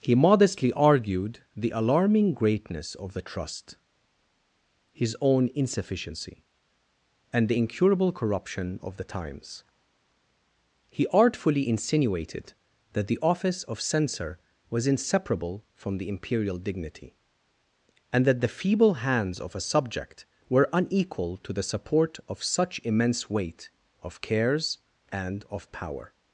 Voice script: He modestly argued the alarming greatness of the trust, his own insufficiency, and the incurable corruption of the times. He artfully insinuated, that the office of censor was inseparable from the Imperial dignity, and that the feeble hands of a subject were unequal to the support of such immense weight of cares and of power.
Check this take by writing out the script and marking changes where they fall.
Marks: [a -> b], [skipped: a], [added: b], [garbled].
He modestly argued the alarming greatness of the trust, his own insufficiency, and the incurable corruption of the times. He artfully insinuated, that the office of censor was inseparable from the Imperial dignity, and that the feeble hands of a subject were unequal to the support of such immense weight of cares and of power.